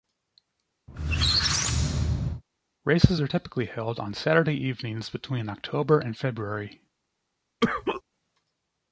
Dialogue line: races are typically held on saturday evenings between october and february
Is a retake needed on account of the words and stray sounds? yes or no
yes